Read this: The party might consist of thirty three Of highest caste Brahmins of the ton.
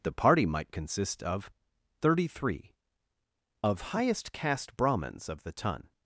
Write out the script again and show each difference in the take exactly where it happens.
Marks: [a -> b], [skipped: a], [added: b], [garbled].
The party might consist of thirty three Of highest caste Brahmins of the ton.